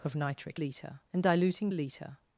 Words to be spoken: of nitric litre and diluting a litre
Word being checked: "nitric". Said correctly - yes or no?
yes